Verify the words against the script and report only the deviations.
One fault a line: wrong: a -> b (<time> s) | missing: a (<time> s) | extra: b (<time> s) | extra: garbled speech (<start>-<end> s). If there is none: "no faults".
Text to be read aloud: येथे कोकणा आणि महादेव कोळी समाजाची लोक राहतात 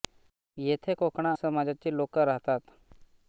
missing: आणि महादेव कोळी (1.3 s)